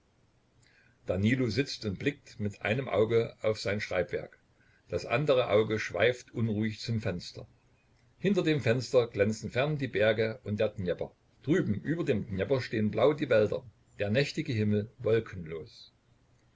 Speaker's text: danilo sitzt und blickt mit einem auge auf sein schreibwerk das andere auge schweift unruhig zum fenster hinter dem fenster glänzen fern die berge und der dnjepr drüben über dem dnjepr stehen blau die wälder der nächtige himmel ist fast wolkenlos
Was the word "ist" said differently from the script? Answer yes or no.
yes